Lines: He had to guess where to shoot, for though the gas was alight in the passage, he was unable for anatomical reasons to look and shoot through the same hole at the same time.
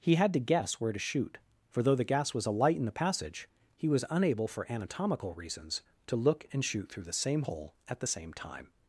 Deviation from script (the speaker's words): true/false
false